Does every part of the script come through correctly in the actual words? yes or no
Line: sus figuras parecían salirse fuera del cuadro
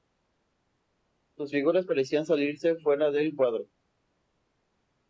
yes